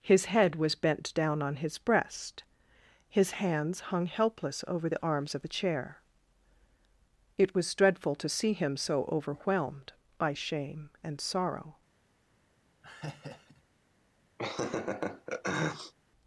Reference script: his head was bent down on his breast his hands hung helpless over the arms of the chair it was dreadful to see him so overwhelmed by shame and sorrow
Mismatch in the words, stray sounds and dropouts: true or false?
true